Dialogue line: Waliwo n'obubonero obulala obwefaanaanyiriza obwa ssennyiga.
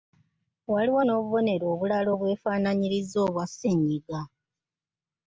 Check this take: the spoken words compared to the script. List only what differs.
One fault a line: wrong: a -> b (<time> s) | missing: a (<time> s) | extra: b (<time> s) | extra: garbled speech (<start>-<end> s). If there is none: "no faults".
no faults